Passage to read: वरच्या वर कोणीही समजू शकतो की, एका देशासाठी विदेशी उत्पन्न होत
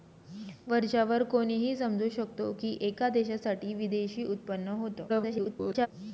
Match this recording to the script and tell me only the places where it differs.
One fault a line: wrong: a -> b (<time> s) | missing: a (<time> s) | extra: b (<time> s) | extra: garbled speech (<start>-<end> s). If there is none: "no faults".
extra: garbled speech (5.1-5.9 s)